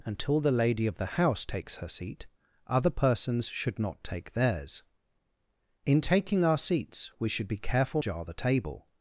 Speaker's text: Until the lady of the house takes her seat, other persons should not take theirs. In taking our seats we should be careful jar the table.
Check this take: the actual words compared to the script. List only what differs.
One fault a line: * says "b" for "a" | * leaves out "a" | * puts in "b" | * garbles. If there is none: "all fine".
all fine